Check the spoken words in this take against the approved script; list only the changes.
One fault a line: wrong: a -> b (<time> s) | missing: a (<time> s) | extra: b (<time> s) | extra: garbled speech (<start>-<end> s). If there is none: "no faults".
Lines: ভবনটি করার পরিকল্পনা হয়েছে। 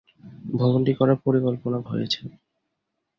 no faults